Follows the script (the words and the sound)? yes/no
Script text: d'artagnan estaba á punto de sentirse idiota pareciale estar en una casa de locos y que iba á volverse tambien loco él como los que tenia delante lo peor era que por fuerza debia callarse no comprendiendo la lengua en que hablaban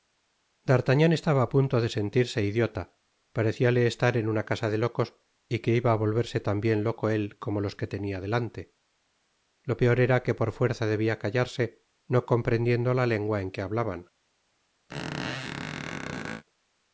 no